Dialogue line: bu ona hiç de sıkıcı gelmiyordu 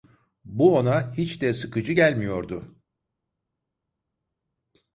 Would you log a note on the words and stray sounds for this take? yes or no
no